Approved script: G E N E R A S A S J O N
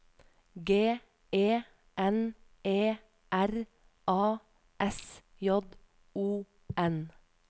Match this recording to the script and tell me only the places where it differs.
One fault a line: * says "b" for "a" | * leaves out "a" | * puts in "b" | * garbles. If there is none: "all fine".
* leaves out "A S"